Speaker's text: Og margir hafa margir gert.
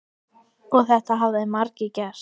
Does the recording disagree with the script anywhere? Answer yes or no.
yes